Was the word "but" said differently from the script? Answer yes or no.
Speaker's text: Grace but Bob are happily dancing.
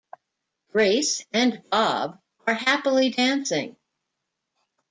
yes